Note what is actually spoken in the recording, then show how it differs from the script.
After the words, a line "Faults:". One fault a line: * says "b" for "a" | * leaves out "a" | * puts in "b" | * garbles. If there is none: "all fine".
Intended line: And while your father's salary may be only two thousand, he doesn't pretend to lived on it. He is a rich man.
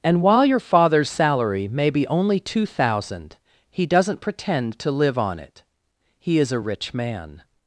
And while your father's salary may be only two thousand, he doesn't pretend to live on it. He is a rich man.
Faults:
* says "live" for "lived"